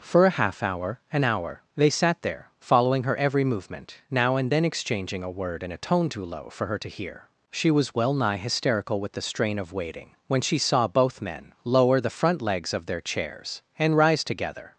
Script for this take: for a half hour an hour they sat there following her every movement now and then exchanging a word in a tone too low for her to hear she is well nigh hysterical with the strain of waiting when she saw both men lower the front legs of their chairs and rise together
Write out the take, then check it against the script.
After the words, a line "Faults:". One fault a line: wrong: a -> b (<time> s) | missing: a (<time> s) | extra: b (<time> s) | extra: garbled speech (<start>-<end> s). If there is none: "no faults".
for a half hour an hour they sat there following her every movement now and then exchanging a word in a tone too low for her to hear she was well nigh hysterical with the strain of waiting when she saw both men lower the front legs of their chairs and rise together
Faults:
wrong: is -> was (7.7 s)